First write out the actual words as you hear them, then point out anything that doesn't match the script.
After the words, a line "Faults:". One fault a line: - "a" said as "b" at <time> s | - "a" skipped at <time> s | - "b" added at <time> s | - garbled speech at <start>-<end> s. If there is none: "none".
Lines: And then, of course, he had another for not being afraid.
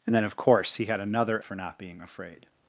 And then, of course, he had another for not being afraid.
Faults:
none